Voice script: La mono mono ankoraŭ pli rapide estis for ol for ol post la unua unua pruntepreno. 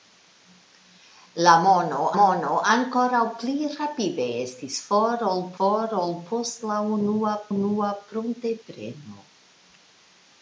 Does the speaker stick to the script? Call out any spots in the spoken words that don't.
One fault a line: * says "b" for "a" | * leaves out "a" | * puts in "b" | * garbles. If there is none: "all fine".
all fine